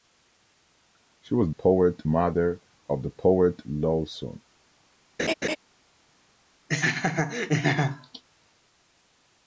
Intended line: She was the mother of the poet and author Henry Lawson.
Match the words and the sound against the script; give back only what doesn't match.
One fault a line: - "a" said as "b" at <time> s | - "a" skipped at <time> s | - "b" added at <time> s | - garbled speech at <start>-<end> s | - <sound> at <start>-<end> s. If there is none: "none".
- "the" said as "poet" at 1.5 s
- "and author Henry" skipped at 3.6 s
- laugh at 5.2-5.6 s
- laugh at 6.7-8.2 s